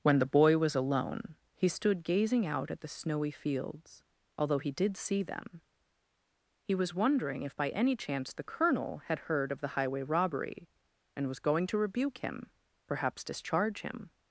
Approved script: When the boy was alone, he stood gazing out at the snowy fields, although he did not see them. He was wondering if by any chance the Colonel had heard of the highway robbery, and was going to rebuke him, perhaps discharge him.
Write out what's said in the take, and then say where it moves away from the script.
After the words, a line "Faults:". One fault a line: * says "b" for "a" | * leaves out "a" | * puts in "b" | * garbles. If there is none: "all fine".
When the boy was alone, he stood gazing out at the snowy fields, although he did see them. He was wondering if by any chance the Colonel had heard of the highway robbery, and was going to rebuke him, perhaps discharge him.
Faults:
* leaves out "not"